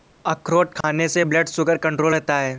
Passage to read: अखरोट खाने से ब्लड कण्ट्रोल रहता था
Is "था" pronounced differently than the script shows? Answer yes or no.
yes